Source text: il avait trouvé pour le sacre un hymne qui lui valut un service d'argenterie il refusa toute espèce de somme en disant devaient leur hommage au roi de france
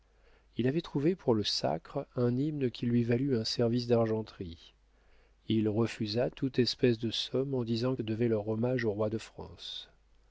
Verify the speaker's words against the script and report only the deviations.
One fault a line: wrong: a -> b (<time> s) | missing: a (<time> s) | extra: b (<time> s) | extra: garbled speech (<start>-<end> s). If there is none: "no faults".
no faults